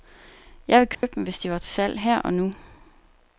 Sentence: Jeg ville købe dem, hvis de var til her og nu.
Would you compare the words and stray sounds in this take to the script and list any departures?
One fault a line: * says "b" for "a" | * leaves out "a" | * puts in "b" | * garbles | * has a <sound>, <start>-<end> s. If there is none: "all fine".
* has a dropout, 0.9-1.0 s
* puts in "salg"